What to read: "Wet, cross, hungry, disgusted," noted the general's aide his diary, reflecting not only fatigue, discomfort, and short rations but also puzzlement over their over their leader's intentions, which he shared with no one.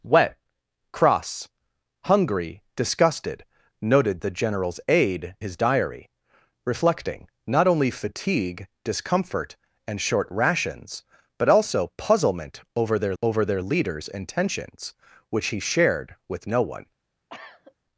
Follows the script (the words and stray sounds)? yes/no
no